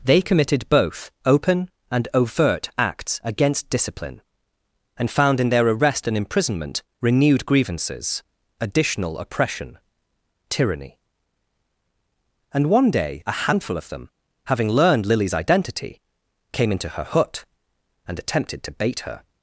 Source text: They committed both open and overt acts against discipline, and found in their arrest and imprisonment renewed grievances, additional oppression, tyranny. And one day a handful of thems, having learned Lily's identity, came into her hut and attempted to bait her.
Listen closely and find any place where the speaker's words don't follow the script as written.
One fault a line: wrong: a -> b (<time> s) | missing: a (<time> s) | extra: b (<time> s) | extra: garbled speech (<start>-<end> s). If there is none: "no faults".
wrong: thems -> them (13.9 s)